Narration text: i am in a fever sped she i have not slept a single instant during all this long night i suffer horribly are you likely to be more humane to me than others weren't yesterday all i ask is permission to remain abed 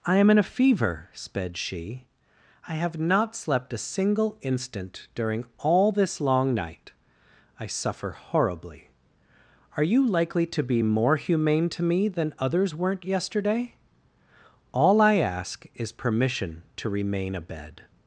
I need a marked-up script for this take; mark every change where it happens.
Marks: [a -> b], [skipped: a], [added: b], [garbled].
i am in a fever sped she i have not slept a single instant during all this long night i suffer horribly are you likely to be more humane to me than others weren't yesterday all i ask is permission to remain abed